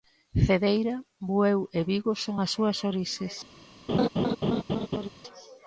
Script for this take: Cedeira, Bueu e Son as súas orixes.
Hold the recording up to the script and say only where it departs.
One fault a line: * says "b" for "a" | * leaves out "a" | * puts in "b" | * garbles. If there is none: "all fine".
* puts in "Vigo"